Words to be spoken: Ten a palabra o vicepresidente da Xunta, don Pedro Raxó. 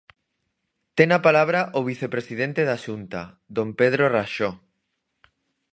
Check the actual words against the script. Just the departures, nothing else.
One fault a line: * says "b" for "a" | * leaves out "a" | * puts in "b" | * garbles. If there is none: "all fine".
all fine